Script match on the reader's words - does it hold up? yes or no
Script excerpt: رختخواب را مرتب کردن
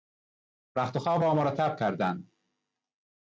yes